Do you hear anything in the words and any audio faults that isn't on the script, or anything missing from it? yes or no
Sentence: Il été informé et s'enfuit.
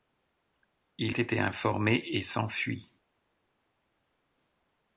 no